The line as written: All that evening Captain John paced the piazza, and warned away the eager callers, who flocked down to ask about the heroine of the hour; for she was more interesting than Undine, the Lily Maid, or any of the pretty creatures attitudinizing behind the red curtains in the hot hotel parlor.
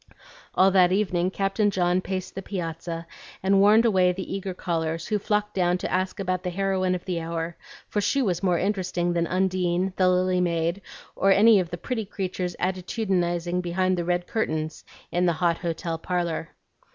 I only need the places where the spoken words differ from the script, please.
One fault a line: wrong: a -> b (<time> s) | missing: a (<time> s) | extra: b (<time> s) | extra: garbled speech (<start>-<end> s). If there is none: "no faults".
no faults